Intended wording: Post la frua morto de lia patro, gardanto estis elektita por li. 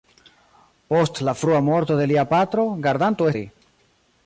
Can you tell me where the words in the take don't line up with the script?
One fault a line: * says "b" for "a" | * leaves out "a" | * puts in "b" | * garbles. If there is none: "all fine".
* leaves out "estis elektita por"